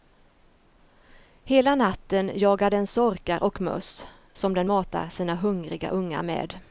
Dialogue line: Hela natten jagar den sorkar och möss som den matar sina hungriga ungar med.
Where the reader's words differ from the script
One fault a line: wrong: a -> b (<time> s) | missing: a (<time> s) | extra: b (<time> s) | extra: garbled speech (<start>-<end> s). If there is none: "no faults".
no faults